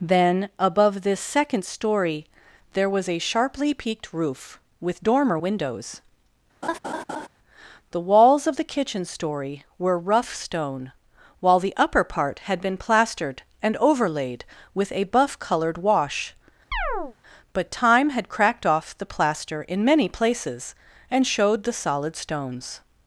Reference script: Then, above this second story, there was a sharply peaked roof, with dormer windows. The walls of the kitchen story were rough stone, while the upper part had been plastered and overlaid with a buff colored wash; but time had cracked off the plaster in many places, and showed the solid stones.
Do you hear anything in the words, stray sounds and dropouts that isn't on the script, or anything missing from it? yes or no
yes